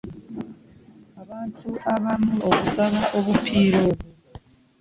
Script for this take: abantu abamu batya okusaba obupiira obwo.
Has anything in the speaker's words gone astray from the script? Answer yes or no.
yes